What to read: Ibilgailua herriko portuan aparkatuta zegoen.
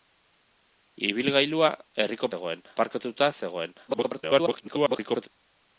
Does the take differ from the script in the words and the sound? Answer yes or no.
yes